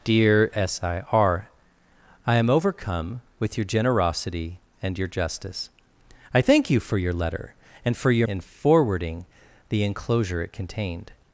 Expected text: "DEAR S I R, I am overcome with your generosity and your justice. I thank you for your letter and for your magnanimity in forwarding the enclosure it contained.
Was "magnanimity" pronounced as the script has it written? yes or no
no